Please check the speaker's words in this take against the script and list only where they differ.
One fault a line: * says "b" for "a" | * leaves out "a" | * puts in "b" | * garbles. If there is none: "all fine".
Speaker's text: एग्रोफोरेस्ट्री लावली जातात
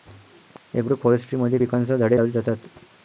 * puts in "मध्ये पिकांसह झाडे"